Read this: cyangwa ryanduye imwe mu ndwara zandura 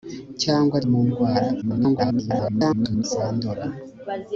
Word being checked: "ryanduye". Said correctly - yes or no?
no